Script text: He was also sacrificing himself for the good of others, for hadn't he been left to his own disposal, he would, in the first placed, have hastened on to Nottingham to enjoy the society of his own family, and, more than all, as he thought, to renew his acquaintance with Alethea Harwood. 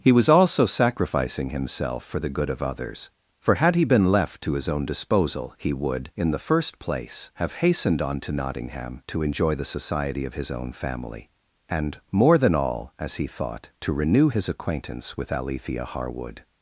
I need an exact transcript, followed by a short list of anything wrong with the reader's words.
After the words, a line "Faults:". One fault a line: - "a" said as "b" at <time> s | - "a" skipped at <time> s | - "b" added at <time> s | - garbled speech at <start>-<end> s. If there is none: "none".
He was also sacrificing himself for the good of others, for had he been left to his own disposal, he would, in the first place, have hastened on to Nottingham to enjoy the society of his own family, and, more than all, as he thought, to renew his acquaintance with Alethea Harwood.
Faults:
- "hadn't" said as "had" at 3.5 s
- "placed" said as "place" at 6.8 s